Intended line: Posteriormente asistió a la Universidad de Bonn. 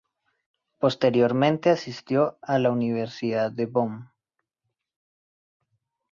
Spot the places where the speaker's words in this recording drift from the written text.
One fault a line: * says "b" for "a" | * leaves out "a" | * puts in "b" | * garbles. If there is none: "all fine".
all fine